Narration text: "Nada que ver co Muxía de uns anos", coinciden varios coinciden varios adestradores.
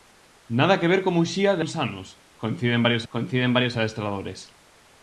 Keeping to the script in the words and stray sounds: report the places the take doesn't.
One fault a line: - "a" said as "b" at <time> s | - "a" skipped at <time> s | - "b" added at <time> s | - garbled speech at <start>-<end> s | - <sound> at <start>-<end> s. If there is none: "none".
none